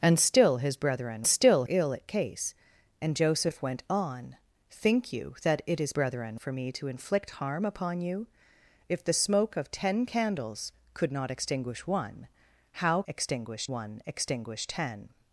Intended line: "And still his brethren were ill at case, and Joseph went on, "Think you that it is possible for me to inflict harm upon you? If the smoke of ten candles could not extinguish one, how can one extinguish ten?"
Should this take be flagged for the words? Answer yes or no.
yes